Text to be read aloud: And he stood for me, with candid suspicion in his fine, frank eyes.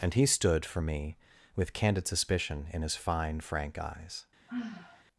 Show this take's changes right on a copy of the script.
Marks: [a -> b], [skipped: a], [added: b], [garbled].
And he stood for me, with candid suspicion in his fine, frank eyes.